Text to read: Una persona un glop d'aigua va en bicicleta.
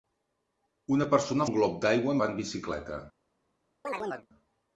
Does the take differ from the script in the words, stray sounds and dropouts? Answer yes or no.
yes